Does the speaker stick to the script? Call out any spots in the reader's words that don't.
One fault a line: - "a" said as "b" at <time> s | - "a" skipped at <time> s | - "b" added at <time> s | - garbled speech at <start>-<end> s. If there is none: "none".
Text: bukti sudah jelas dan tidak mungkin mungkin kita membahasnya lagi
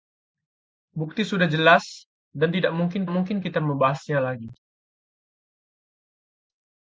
none